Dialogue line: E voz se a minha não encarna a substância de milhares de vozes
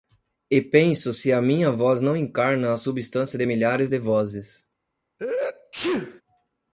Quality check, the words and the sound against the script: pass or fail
fail